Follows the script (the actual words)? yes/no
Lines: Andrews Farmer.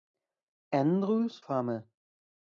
yes